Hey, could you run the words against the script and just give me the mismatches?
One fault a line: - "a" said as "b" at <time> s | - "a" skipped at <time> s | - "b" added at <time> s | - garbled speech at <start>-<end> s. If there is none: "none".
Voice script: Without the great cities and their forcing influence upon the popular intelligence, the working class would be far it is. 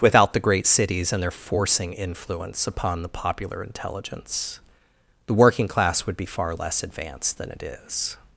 - "less advanced than" added at 6.5 s